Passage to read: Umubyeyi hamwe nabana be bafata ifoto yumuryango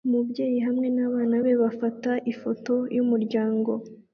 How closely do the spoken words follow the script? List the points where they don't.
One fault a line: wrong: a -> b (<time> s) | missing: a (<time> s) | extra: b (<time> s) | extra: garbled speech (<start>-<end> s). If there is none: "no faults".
no faults